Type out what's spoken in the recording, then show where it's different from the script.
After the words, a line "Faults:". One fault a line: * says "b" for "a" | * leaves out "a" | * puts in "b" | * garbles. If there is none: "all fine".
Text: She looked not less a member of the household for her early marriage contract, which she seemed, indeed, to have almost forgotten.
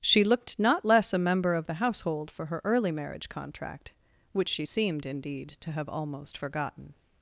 She looked not less a member of the household for her early marriage contract, which she seemed, indeed, to have almost forgotten.
Faults:
all fine